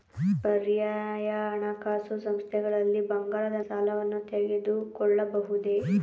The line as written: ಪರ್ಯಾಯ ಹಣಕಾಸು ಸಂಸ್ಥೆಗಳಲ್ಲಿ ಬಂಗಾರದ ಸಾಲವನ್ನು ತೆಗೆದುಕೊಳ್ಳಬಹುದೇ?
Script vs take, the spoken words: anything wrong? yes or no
no